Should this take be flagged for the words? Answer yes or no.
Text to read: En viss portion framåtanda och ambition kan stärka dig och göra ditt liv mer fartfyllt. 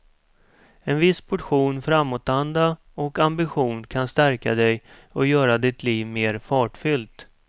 no